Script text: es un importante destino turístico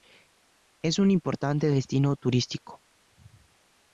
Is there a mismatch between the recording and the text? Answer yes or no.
no